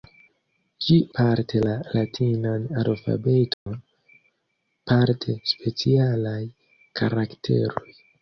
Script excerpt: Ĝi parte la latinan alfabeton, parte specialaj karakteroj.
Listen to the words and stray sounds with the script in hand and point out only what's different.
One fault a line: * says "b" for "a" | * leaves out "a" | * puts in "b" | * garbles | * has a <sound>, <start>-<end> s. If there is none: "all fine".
* has a dropout, 3.5-3.7 s